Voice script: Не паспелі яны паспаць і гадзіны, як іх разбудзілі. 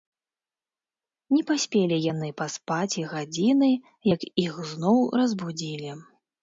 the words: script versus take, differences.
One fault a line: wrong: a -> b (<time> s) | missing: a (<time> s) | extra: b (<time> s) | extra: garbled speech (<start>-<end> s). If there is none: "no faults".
extra: зноў (4.8 s)